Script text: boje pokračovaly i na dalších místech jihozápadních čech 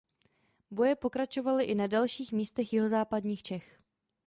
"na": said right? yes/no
yes